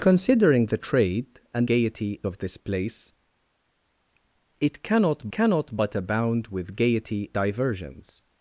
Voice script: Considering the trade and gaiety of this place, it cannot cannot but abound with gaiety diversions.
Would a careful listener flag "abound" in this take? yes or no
no